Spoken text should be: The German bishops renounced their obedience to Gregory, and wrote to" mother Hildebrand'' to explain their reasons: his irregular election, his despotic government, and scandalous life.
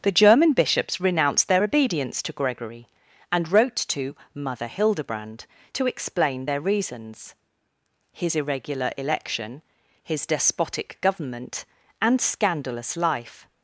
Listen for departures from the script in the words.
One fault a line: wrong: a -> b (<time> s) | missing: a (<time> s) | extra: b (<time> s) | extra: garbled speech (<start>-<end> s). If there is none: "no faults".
no faults